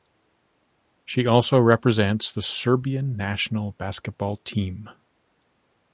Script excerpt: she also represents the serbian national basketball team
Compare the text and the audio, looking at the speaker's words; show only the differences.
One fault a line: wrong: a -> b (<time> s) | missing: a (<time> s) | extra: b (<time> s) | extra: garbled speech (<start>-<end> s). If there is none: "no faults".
no faults